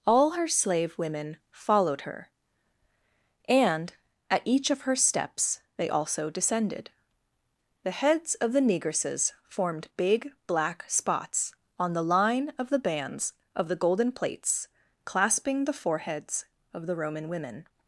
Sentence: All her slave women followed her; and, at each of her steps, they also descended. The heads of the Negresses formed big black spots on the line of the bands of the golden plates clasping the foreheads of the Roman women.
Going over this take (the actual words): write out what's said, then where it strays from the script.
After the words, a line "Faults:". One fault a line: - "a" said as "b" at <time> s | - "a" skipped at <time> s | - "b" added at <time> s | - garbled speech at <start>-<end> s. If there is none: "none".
All her slave women followed her; and, at each of her steps, they also descended. The heads of the Negresses formed big black spots on the line of the bands of the golden plates clasping the foreheads of the Roman women.
Faults:
none